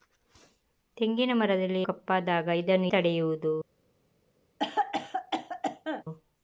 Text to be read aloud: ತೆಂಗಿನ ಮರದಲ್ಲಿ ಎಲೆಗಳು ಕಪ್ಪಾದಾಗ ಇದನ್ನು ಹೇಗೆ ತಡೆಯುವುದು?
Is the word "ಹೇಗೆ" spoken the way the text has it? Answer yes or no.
no